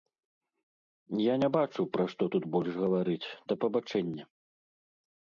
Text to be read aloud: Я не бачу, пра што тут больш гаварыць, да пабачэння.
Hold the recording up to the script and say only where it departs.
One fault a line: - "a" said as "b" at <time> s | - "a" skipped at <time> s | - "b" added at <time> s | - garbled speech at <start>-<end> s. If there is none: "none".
none